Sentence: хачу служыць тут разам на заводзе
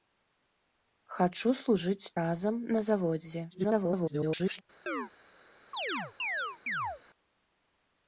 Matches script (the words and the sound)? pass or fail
fail